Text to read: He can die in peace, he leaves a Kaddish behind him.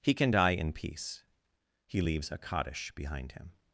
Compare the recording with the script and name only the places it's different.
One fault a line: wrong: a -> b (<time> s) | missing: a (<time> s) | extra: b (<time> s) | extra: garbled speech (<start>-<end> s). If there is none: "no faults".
no faults